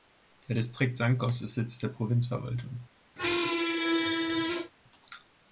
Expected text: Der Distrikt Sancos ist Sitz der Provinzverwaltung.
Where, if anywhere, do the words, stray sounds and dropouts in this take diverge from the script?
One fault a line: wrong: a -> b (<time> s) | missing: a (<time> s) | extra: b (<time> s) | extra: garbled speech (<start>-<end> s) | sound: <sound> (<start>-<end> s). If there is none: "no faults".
sound: squeak (3.2-4.7 s)